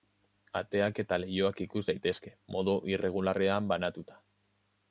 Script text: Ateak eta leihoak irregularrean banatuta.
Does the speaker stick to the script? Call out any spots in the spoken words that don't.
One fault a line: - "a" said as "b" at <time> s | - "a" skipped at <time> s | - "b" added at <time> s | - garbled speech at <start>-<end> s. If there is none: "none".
- "ikus daitezke modu" added at 1.6 s